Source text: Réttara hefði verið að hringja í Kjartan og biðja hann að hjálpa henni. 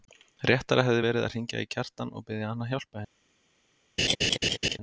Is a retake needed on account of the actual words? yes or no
no